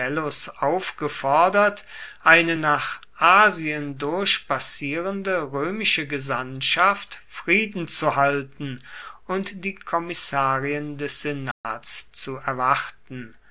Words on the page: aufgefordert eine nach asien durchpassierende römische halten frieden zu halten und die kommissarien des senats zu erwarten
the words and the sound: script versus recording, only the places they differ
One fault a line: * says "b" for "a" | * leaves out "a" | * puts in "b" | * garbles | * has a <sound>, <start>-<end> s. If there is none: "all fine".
* says "gesandtschaft" for "halten"
* has a dropout, 11.5-11.6 s